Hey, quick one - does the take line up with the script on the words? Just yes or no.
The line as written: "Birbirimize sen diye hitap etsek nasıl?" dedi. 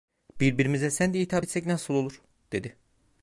no